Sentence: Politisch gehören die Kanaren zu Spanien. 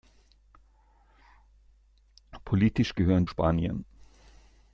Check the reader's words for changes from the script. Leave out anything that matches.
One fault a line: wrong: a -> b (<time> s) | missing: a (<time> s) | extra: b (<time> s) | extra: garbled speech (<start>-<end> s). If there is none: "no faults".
missing: die Kanaren zu (3.2 s)